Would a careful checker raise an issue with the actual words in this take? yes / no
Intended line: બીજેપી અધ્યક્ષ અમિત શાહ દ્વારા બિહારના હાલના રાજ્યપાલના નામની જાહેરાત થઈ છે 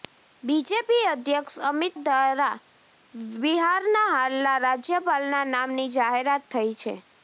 yes